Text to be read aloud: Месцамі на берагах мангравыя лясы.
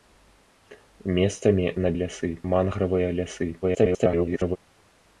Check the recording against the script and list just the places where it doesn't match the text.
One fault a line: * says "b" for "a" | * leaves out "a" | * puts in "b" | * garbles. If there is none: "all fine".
* says "лясы" for "берагах"
* garbles